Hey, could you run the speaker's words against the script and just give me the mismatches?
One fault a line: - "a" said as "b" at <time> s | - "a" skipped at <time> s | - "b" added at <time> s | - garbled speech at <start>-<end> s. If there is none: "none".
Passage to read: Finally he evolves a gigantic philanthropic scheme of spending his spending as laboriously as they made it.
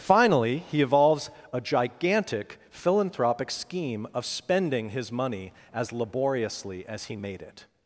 - "spending" said as "money" at 5.1 s
- "they" said as "he" at 7.1 s